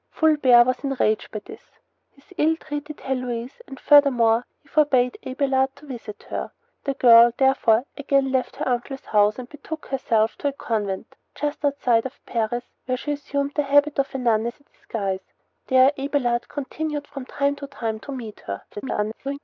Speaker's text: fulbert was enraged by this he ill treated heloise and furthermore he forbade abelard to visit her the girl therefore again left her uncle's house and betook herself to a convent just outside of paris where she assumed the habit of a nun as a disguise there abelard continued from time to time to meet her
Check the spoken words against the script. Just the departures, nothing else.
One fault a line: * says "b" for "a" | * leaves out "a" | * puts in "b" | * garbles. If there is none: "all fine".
* garbles